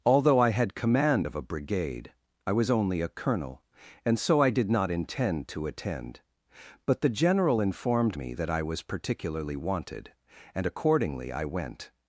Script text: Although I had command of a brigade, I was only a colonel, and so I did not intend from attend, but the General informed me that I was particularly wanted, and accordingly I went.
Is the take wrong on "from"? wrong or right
wrong